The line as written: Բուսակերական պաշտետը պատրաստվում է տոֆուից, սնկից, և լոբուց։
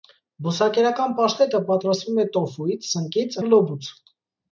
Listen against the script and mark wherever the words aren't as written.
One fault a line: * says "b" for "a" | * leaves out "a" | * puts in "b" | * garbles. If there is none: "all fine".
all fine